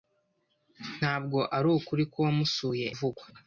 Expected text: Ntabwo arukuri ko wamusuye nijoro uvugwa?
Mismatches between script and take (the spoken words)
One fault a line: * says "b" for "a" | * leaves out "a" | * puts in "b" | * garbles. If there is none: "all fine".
* leaves out "nijoro"